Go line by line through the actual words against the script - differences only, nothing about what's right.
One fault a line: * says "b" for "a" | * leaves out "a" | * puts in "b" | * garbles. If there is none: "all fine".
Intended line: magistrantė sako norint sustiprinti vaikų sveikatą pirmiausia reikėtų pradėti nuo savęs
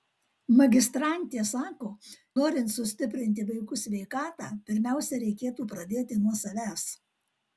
all fine